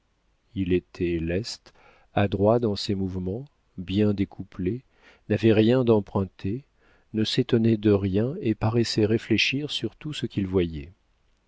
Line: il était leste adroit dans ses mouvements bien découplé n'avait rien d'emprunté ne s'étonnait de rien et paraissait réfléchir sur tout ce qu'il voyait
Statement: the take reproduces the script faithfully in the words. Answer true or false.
true